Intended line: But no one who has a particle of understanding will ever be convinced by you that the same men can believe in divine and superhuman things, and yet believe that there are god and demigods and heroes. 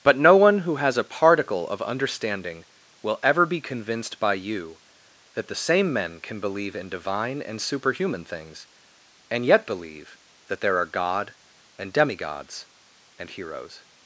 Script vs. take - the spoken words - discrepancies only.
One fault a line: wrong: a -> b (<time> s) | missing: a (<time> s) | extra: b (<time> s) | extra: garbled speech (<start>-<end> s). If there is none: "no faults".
no faults